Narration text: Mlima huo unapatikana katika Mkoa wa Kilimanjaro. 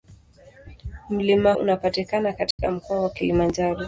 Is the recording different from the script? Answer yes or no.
yes